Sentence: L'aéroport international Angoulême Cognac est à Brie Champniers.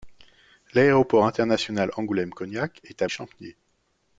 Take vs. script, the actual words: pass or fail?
fail